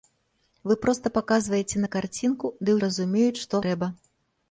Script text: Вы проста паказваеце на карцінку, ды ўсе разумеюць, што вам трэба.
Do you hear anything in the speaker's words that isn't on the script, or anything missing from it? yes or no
yes